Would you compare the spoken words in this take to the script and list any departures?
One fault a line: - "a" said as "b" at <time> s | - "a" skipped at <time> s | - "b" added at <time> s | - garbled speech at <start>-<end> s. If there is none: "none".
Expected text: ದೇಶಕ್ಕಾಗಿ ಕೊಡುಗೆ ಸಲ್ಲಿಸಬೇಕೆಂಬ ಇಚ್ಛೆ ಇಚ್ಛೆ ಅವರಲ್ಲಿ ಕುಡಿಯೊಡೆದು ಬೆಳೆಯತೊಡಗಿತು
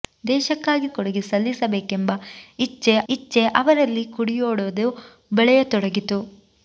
none